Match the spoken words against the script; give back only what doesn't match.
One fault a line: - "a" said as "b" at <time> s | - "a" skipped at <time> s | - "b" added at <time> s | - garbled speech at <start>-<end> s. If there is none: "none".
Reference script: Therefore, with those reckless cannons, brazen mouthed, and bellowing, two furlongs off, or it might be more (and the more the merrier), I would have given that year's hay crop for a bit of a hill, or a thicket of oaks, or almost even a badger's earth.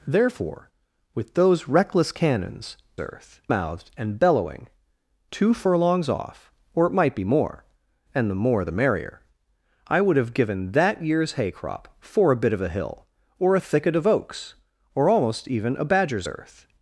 - "brazen" said as "earth" at 3.0 s